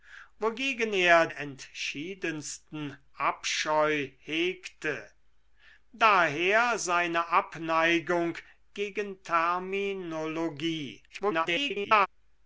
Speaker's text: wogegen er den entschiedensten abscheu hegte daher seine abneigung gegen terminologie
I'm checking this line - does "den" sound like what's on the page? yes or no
no